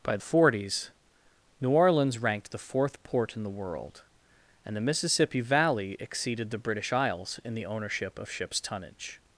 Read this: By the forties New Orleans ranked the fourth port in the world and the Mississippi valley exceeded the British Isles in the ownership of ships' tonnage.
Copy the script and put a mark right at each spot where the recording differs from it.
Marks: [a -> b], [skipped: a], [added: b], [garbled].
By [skipped: the] forties New Orleans ranked the fourth port in the world and the Mississippi valley exceeded the British Isles in the ownership of ships' tonnage.